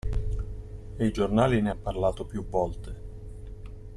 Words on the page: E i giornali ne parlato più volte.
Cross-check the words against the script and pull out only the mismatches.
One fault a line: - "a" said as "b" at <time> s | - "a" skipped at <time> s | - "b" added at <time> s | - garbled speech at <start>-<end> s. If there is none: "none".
- "han" added at 1.7 s